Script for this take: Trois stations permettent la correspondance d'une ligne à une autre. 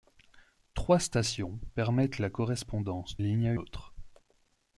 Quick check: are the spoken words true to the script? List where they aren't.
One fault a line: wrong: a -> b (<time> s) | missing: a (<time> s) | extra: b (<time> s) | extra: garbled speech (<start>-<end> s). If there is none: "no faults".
missing: d'une (3.1 s)
missing: une (3.5 s)